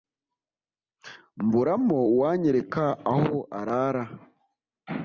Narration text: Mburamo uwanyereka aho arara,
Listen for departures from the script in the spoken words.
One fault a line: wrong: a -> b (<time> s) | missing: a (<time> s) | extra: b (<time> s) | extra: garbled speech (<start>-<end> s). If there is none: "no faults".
no faults